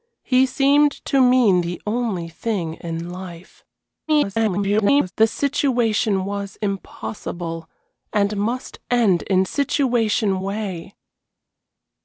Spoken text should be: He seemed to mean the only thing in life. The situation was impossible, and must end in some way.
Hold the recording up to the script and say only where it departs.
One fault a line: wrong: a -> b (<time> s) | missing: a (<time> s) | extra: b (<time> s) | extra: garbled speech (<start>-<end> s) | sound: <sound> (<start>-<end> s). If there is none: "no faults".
extra: garbled speech (4.1-5.1 s)
wrong: some -> situation (9.4 s)